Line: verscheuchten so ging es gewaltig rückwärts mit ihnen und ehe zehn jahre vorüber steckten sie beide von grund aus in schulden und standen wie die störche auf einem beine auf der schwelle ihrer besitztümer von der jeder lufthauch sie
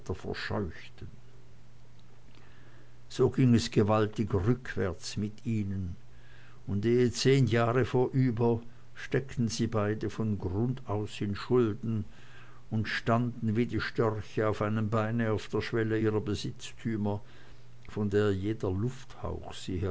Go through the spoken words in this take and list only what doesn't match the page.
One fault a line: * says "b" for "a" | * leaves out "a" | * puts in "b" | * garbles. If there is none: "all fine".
all fine